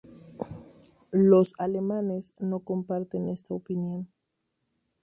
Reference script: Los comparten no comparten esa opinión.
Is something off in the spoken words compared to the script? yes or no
yes